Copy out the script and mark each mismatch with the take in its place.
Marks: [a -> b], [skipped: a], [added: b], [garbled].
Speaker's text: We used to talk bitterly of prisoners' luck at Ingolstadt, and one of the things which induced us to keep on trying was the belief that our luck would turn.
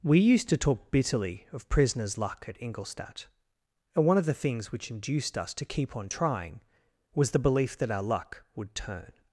We used to talk bitterly of prisoners' luck at Ingolstadt, and one of the things which induced us to keep on trying was the belief that our luck would turn.